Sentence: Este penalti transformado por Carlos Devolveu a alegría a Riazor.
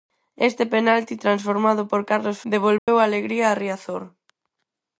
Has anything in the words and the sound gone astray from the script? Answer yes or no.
yes